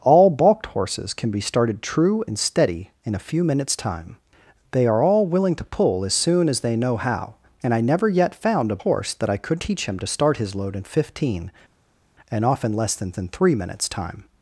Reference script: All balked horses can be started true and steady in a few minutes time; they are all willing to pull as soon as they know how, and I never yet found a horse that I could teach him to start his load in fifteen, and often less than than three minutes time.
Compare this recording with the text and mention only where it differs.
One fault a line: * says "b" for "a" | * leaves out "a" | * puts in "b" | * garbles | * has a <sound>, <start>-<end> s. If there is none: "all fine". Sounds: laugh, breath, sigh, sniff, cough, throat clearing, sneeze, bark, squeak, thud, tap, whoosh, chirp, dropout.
all fine